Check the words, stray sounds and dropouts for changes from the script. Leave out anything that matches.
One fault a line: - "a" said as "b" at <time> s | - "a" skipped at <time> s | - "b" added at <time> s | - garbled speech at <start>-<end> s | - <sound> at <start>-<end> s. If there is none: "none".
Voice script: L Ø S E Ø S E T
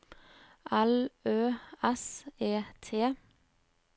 - "Ø S E" skipped at 2.6 s